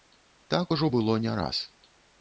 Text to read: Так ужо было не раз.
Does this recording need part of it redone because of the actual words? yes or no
no